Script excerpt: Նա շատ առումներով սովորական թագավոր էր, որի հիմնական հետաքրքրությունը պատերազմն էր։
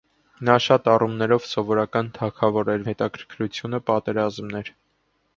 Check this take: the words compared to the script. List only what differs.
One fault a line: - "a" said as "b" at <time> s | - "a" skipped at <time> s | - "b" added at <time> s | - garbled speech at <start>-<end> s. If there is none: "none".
- "որի հիմնական" skipped at 2.9 s